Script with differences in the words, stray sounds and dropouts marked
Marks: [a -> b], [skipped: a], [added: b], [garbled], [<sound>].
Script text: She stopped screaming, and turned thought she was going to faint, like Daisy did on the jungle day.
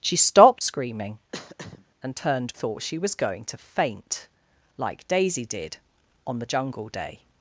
She stopped screaming, [throat clearing] and turned thought she was going to faint, like Daisy did on the jungle day.